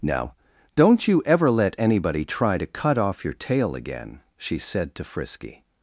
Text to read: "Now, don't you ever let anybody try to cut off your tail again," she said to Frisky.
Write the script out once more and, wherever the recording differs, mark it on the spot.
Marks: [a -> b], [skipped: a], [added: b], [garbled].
"Now, don't you ever let anybody try to cut off your tail again," she said to Frisky.